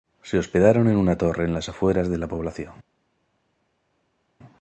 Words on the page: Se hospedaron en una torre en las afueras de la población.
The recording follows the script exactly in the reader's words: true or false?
true